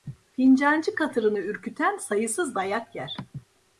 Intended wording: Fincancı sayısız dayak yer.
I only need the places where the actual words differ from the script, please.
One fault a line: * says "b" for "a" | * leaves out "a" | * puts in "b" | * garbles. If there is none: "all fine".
* puts in "katırını ürküten"